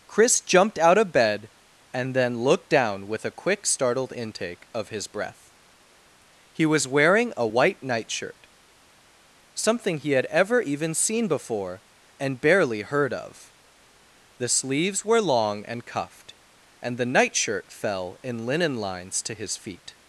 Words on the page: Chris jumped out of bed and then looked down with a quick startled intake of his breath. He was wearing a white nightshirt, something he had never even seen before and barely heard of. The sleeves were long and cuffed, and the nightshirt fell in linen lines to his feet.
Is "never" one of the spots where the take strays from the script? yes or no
yes